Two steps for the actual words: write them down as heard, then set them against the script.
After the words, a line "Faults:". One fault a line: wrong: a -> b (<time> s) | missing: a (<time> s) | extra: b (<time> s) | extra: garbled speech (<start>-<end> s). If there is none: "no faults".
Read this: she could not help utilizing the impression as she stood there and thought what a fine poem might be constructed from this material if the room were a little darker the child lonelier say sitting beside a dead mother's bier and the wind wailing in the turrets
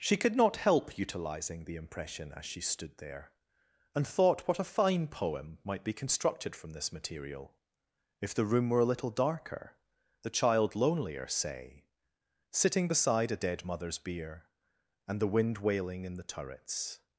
she could not help utilizing the impression as she stood there and thought what a fine poem might be constructed from this material if the room were a little darker the child lonelier say sitting beside a dead mother's bier and the wind wailing in the turrets
Faults:
no faults